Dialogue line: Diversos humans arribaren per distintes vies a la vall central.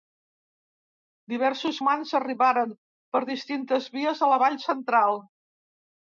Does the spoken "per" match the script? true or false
true